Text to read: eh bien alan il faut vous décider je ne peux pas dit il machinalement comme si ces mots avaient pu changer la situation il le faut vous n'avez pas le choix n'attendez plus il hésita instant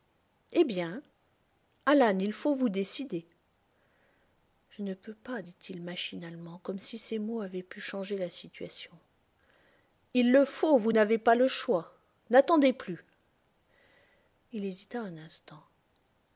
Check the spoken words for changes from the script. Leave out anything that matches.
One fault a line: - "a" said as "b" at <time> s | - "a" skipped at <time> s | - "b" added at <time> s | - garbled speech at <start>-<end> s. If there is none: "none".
- "un" added at 15.0 s